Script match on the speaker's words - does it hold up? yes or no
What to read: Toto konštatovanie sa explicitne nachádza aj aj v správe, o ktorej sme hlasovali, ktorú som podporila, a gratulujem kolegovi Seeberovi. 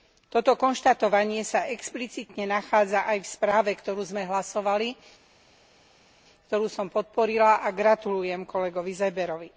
no